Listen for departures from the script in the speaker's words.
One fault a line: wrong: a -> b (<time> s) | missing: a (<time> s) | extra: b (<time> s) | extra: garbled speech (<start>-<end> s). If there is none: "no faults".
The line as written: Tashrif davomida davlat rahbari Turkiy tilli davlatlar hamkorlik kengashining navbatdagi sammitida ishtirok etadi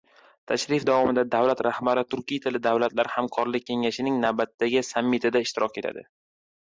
no faults